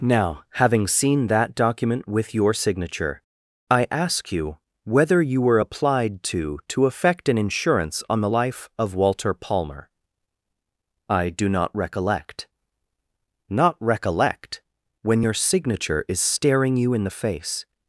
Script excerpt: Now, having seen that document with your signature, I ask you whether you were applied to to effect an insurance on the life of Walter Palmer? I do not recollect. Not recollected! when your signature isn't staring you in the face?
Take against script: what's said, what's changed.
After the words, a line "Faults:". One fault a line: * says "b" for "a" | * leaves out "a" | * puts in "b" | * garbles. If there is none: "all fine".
Now, having seen that document with your signature, I ask you whether you were applied to to effect an insurance on the life of Walter Palmer? I do not recollect. Not recollect! when your signature is staring you in the face?
Faults:
* says "recollect" for "recollected"
* says "is" for "isn't"